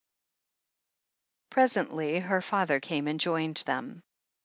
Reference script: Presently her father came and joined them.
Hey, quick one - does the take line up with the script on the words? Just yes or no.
yes